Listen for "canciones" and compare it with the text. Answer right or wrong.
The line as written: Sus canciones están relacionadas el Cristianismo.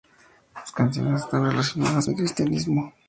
right